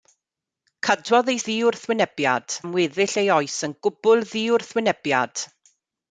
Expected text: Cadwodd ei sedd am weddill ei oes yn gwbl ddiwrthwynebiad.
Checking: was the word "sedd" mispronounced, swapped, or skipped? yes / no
yes